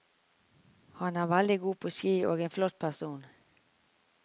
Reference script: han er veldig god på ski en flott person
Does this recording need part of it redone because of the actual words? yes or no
yes